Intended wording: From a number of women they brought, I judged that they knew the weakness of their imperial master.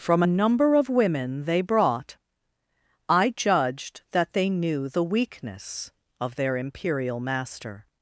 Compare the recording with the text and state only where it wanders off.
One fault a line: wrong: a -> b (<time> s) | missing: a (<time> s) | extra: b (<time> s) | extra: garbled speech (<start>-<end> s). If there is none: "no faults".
no faults